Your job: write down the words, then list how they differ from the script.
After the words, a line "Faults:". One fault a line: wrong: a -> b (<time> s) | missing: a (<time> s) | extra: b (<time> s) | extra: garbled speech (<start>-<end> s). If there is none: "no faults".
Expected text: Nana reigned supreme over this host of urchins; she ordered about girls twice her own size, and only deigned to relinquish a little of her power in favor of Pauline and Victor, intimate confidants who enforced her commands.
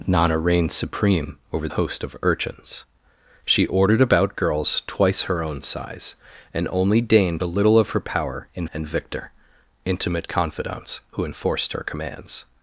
Nana reigned supreme over host of urchins; she ordered about girls twice her own size, and only deigned a little of her power in and Victor, intimate confidants who enforced her commands.
Faults:
missing: this (1.7 s)
missing: to relinquish (7.4 s)
missing: favor of Pauline (8.7 s)